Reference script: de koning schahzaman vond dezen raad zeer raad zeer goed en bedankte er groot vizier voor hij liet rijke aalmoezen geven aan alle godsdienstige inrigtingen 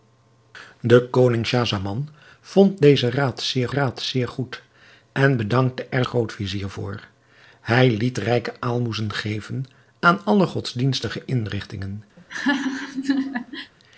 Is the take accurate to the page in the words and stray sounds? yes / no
no